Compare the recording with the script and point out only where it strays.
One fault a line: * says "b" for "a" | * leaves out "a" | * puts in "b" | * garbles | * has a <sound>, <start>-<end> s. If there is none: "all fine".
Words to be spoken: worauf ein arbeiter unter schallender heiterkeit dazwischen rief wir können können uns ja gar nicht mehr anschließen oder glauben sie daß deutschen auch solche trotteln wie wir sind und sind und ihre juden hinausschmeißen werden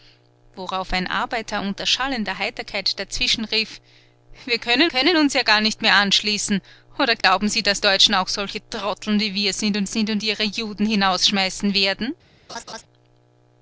* has a dropout, 7.2-7.2 s
* has a laugh, 12.5-12.8 s